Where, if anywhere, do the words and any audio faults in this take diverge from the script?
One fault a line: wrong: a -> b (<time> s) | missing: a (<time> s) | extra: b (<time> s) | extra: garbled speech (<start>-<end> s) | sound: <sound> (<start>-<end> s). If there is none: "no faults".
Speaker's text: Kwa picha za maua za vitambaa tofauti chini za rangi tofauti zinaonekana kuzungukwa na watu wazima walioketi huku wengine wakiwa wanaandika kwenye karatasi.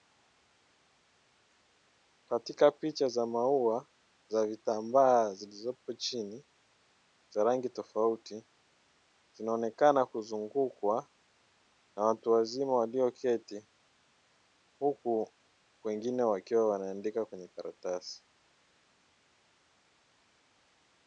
wrong: Kwa -> Katika (2.2 s)
wrong: tofauti -> zilizopo (5.3 s)